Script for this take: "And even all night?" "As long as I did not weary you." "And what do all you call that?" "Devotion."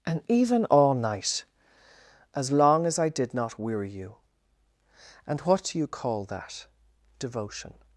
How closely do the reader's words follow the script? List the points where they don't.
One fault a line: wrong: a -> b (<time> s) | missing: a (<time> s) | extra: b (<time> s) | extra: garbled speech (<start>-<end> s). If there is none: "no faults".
missing: all (5.8 s)